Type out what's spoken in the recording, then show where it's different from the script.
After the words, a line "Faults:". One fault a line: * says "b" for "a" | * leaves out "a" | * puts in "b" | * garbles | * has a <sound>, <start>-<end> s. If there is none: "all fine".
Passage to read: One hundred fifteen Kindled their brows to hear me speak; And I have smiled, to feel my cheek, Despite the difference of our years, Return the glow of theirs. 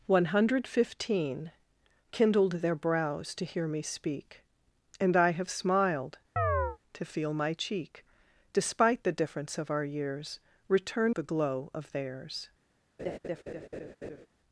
One hundred fifteen Kindled their brows to hear me speak; And I have smiled, to feel my cheek, Despite the difference of our years, Return the glow of theirs.
Faults:
* has a chirp, 6.4-6.8 s
* has a laugh, 13.0-14.3 s